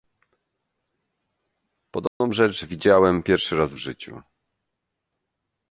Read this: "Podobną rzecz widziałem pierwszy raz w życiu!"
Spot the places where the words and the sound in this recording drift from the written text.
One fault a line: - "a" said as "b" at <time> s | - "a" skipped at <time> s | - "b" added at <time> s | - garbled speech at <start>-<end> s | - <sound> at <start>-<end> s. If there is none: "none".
- dropout at 2.1-2.2 s